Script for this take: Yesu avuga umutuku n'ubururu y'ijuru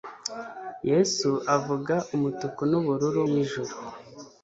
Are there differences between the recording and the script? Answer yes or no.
no